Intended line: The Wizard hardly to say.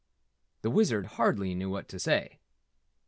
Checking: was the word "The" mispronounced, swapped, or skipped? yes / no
no